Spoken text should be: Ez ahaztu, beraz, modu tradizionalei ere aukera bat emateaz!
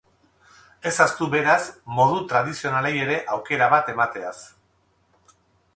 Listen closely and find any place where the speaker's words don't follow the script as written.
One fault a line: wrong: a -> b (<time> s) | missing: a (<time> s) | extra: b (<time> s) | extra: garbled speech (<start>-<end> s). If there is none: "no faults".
no faults